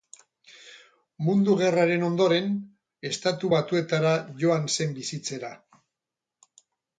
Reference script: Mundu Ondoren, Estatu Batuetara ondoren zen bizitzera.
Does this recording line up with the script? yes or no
no